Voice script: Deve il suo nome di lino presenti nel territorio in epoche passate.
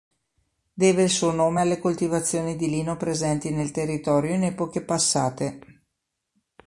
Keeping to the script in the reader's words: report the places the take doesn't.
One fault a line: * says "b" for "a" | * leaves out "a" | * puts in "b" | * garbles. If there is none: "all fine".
* puts in "alle coltivazioni"